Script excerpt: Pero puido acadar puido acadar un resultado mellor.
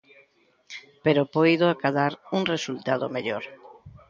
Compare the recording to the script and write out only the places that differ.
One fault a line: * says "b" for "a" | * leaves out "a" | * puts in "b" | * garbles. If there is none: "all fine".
* leaves out "puido acadar"